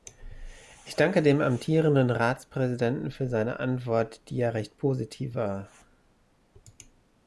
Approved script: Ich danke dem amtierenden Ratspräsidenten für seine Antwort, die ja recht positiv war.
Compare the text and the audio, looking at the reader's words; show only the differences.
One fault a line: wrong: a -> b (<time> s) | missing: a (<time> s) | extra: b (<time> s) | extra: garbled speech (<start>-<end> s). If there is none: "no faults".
no faults